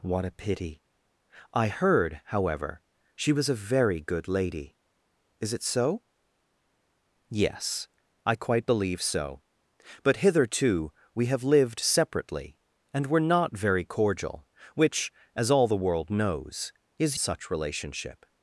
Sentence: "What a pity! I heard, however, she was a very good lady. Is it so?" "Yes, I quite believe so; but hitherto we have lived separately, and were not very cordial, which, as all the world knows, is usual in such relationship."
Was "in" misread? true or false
true